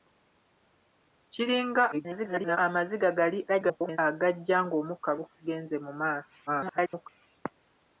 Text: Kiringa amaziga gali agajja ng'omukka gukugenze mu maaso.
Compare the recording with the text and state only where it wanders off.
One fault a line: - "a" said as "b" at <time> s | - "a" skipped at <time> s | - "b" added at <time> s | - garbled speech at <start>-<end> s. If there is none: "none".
- garbled speech at 1.9-2.6 s
- garbled speech at 3.5-4.0 s
- garbled speech at 6.5-7.1 s